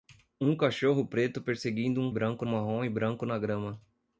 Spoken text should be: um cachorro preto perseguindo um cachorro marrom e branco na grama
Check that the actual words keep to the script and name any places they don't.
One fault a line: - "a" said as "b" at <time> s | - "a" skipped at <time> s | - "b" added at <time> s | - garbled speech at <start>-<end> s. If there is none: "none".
- "cachorro" said as "branco" at 2.1 s